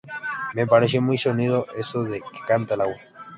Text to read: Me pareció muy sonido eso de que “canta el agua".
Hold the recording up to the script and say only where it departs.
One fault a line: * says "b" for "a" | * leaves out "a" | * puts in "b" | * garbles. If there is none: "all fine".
all fine